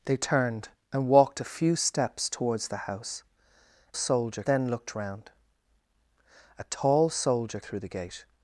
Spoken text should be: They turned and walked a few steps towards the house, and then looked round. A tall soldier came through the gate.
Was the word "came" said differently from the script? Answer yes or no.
yes